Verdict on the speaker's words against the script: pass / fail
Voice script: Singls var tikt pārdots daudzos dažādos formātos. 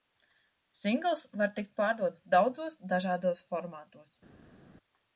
pass